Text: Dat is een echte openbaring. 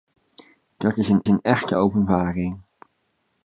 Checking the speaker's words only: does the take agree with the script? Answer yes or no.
no